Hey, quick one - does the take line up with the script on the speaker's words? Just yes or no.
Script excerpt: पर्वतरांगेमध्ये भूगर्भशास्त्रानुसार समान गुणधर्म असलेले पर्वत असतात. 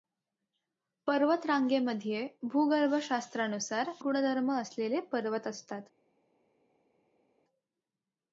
no